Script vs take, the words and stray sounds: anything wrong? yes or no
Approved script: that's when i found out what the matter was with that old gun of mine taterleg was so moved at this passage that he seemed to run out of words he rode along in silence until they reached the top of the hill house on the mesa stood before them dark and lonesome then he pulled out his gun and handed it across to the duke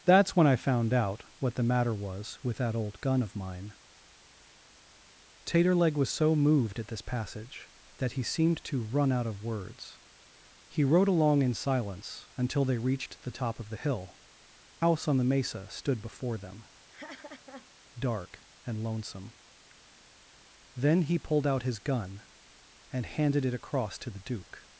yes